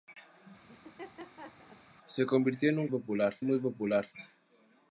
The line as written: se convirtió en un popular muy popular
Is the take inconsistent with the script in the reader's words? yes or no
no